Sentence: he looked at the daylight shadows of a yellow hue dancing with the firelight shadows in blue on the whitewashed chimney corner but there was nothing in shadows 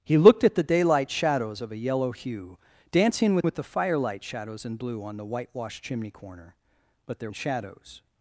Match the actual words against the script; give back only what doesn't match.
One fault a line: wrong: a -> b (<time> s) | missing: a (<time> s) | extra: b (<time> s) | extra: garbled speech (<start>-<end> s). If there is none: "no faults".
extra: with (3.4 s)
missing: was nothing (7.3 s)